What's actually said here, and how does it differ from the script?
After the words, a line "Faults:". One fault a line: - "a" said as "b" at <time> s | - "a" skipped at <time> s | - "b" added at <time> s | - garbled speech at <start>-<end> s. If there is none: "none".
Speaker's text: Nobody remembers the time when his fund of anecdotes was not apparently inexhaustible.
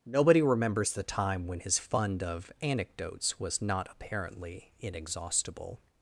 Nobody remembers the time when his fund of anecdotes was not apparently inexhaustible.
Faults:
none